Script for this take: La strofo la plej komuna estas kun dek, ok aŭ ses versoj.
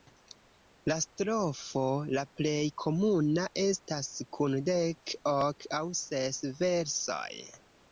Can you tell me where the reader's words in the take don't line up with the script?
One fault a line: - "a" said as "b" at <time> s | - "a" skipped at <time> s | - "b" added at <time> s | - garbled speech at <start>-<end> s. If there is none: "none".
none